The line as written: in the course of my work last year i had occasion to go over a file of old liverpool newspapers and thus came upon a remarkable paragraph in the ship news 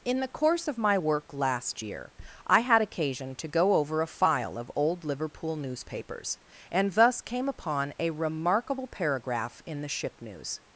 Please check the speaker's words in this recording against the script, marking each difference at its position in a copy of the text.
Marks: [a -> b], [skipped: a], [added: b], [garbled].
in the course of my work last year i had occasion to go over a file of old liverpool newspapers and thus came upon a remarkable paragraph in the ship news